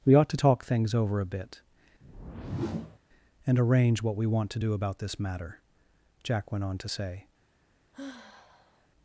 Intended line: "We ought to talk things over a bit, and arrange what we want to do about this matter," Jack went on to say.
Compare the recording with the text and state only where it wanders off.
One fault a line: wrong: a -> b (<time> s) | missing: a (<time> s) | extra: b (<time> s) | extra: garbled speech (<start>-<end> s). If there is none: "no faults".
no faults